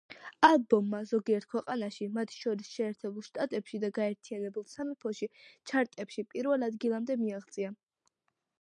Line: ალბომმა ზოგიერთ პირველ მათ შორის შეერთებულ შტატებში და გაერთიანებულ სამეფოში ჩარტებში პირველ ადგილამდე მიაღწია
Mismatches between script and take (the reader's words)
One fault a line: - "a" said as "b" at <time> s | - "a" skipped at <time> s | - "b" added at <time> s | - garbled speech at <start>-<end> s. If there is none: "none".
- "პირველ" said as "ქვეყანაში" at 1.5 s